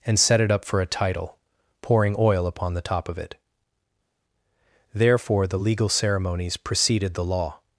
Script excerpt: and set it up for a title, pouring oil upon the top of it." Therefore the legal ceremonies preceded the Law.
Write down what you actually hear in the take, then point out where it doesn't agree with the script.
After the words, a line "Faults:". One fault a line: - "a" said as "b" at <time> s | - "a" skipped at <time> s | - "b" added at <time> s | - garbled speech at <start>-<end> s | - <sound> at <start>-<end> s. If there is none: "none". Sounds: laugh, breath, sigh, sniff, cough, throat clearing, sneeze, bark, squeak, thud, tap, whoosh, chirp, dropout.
and set it up for a title, pouring oil upon the top of it." Therefore the legal ceremonies preceded the Law.
Faults:
none